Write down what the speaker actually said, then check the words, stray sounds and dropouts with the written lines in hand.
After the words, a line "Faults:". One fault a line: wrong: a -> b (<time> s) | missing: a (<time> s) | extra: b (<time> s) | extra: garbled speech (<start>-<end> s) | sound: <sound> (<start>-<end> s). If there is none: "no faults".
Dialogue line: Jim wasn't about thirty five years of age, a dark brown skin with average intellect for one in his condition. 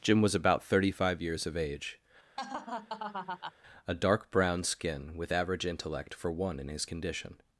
Jim was about thirty five years of age, a dark brown skin with average intellect for one in his condition.
Faults:
wrong: wasn't -> was (0.2 s)
sound: laugh (2.4-3.5 s)